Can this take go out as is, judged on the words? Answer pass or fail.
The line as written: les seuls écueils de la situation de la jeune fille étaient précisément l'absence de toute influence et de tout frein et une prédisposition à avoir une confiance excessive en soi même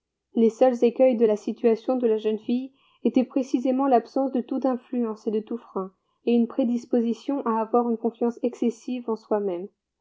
pass